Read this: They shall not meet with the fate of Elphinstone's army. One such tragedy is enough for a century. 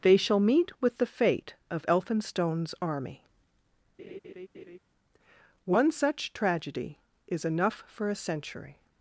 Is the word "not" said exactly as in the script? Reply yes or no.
no